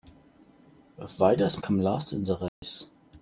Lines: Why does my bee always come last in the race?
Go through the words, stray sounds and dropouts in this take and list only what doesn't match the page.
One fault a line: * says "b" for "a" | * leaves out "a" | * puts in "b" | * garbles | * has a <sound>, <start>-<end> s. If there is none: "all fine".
* leaves out "my bee always"
* has a dropout, 2.5-2.6 s